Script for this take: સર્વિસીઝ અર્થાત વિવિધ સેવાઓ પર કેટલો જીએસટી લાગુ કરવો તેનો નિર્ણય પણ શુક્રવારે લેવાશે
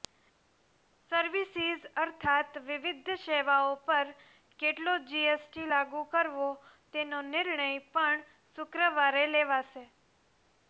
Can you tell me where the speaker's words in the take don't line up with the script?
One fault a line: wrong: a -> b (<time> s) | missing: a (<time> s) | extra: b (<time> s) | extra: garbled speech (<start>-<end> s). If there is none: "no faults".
no faults